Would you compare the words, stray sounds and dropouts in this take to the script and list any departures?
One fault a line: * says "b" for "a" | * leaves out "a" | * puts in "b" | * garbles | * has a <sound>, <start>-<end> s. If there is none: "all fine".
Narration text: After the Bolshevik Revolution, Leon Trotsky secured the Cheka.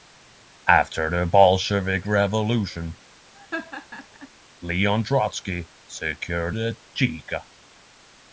* has a laugh, 3.3-4.3 s